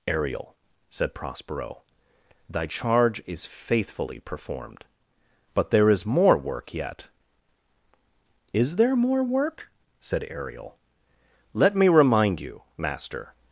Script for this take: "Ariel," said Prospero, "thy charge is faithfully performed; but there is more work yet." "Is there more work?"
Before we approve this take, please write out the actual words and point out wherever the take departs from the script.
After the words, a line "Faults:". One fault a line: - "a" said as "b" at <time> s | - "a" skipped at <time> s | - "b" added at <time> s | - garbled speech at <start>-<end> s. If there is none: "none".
"Ariel," said Prospero, "thy charge is faithfully performed; but there is more work yet." "Is there more work?" said Ariel. "Let me remind you, master
Faults:
- "said Ariel Let me remind you master" added at 10.0 s